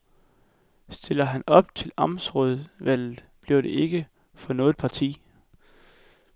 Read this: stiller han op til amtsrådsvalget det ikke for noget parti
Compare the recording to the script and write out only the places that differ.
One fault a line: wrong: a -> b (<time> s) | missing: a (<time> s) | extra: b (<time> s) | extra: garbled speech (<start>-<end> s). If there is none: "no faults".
extra: bliver (3.4 s)